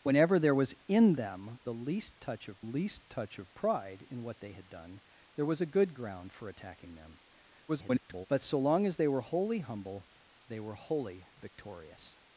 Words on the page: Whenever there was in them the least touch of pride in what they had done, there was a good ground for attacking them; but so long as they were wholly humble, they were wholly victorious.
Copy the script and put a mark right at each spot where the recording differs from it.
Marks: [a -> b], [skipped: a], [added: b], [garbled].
Whenever there was in them the least touch of [added: least touch of] pride in what they had done, there was a good ground for attacking them; [garbled] but so long as they were wholly humble, they were wholly victorious.